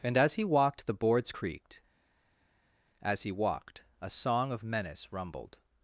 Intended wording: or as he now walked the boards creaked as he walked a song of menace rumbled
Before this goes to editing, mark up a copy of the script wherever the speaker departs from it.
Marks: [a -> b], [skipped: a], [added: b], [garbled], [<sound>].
[or -> and] as he [skipped: now] walked the boards creaked as he walked a song of menace rumbled